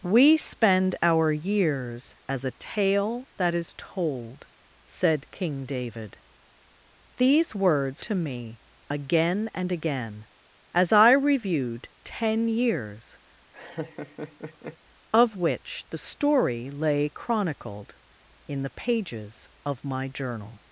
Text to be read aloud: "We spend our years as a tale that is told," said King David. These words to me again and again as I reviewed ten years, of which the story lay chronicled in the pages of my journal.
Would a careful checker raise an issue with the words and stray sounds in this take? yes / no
yes